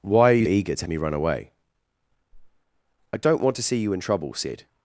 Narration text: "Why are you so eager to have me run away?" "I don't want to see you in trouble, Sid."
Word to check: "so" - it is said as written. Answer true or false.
false